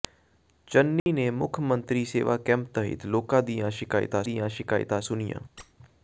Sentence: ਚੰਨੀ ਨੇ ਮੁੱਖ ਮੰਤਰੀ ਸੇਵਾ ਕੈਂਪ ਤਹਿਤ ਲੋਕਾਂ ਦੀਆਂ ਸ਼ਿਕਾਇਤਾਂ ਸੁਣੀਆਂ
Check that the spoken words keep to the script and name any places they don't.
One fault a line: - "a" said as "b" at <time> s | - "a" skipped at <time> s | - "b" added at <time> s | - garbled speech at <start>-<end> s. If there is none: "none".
- "ਦੀਆਂ ਸ਼ਿਕਾਇਤਾਂ" added at 4.2 s